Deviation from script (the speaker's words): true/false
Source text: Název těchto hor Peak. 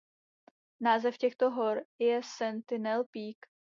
true